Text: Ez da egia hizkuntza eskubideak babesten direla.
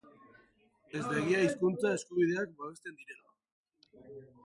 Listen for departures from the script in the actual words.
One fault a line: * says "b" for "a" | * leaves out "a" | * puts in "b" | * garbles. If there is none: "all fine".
all fine